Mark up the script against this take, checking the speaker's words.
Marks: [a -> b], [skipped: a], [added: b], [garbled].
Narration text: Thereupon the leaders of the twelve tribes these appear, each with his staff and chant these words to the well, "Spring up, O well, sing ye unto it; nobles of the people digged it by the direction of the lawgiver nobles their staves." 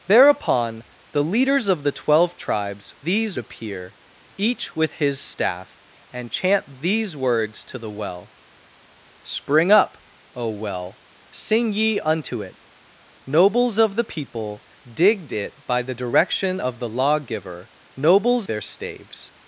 Thereupon the leaders of the twelve tribes these appear, each with his staff and chant these words to the well, "Spring up, O well, sing ye unto it; nobles of the people digged it by the direction of the lawgiver nobles their staves."